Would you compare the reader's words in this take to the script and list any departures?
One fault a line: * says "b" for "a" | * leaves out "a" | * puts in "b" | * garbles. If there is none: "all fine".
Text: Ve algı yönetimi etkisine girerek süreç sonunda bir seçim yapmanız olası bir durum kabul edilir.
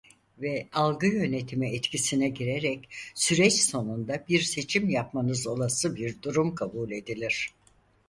all fine